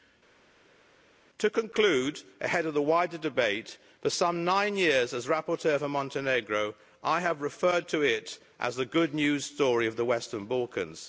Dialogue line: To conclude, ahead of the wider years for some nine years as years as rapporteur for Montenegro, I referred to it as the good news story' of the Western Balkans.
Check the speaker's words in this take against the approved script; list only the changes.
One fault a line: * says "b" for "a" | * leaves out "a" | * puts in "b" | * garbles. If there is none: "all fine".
* says "debate" for "years"
* leaves out "years as"
* puts in "have"